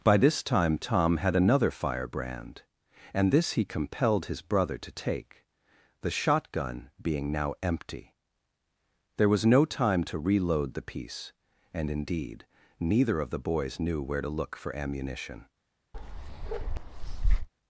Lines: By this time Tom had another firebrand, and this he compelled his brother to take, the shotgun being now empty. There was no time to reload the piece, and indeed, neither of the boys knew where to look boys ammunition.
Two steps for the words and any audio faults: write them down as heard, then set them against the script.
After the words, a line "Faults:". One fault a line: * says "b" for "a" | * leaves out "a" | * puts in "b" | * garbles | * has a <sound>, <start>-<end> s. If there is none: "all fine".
By this time Tom had another firebrand, and this he compelled his brother to take, the shotgun being now empty. There was no time to reload the piece, and indeed, neither of the boys knew where to look for ammunition.
Faults:
* says "for" for "boys"
* has a bark, 15.9-17.5 s